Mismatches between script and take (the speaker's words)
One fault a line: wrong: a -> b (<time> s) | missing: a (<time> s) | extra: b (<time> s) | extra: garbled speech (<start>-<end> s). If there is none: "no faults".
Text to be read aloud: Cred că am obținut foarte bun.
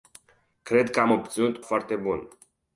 no faults